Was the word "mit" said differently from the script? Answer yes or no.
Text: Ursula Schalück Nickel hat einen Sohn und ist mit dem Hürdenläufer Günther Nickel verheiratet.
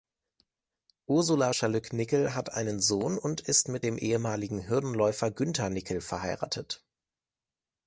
no